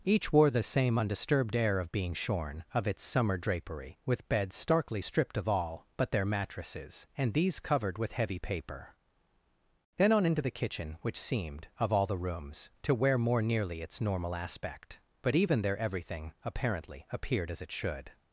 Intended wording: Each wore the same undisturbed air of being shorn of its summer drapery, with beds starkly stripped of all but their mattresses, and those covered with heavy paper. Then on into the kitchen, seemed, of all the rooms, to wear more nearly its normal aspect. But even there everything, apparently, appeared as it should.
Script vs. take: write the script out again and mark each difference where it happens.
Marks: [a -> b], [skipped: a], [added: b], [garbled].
Each wore the same undisturbed air of being shorn of its summer drapery, with beds starkly stripped of all but their mattresses, and [those -> these] covered with heavy paper. Then on into the kitchen, [added: which] seemed, of all the rooms, to wear more nearly its normal aspect. But even there everything, apparently, appeared as it should.